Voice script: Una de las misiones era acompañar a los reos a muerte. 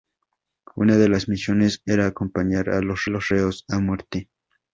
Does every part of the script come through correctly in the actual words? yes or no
no